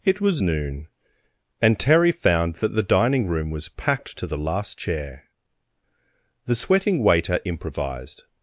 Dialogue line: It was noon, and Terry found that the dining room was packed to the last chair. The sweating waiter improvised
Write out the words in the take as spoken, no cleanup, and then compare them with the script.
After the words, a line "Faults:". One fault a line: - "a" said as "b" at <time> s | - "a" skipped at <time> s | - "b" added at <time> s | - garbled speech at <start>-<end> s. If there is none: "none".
It was noon, and Terry found that the dining room was packed to the last chair. The sweating waiter improvised
Faults:
none